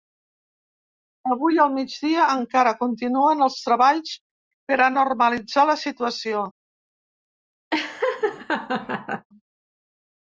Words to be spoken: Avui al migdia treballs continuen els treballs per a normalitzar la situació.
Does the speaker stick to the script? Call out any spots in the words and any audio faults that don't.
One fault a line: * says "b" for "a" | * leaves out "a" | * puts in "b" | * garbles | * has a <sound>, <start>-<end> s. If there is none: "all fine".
* says "encara" for "treballs"
* has a laugh, 7.7-9.3 s